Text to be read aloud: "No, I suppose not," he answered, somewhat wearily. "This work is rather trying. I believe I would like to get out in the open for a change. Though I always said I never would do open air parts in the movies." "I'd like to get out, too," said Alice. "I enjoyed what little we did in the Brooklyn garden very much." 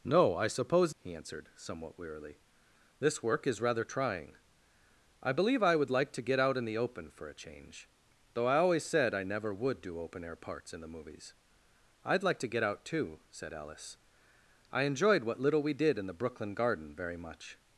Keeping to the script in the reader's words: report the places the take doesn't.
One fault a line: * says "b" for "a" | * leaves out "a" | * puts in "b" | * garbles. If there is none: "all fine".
* leaves out "not"